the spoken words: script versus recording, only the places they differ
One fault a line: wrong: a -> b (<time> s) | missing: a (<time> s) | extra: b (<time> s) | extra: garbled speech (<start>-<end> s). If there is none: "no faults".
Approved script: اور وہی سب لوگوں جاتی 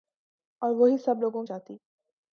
no faults